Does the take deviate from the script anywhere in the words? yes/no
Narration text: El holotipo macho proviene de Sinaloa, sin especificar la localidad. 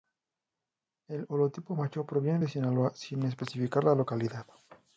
no